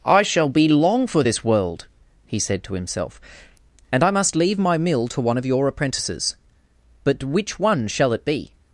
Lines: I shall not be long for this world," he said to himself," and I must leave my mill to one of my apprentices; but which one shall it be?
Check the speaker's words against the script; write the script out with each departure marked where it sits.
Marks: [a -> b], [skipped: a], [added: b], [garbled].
I shall [skipped: not] be long for this world," he said to himself," and I must leave my mill to one of [my -> your] apprentices; but which one shall it be?